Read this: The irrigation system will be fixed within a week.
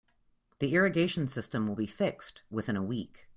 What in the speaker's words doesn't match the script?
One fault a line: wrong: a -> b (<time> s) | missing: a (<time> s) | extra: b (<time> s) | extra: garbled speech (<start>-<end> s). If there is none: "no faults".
no faults